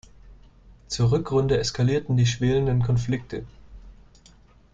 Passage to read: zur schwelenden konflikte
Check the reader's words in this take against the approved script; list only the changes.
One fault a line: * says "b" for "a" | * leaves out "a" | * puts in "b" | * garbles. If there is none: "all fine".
* puts in "rückrunde eskalierten die"